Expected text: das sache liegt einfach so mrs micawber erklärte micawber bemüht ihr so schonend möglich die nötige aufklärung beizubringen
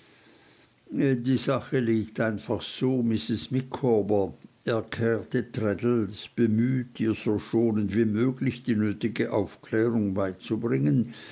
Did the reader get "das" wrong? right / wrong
wrong